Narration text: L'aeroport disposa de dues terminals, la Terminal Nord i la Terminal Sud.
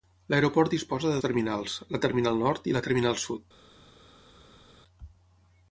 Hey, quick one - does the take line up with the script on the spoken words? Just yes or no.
no